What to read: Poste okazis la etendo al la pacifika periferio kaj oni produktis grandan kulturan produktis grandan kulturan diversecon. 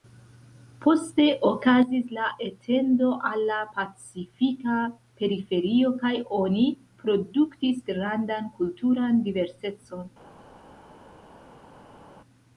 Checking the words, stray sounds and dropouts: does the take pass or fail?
fail